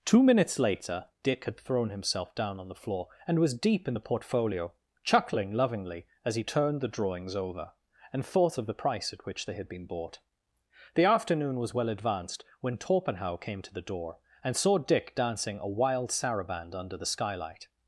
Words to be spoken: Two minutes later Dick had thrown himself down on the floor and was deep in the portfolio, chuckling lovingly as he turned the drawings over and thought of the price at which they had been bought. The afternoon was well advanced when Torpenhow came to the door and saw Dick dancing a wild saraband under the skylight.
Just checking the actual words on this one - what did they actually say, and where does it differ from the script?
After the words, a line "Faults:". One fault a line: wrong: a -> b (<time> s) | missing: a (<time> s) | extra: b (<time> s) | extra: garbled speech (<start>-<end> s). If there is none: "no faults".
Two minutes later Dick had thrown himself down on the floor and was deep in the portfolio, chuckling lovingly as he turned the drawings over and thought of the price at which they had been bought. The afternoon was well advanced when Torpenhow came to the door and saw Dick dancing a wild saraband under the skylight.
Faults:
no faults